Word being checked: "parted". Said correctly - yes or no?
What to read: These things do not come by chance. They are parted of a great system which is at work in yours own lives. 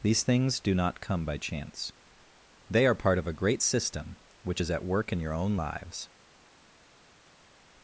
no